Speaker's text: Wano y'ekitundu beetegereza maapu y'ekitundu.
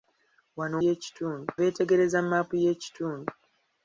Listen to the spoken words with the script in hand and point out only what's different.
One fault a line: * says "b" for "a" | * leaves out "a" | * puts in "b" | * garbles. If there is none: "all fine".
all fine